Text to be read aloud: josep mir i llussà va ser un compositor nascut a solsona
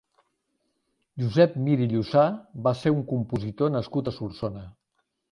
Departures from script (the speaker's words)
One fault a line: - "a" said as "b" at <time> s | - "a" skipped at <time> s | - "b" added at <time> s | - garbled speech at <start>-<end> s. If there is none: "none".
none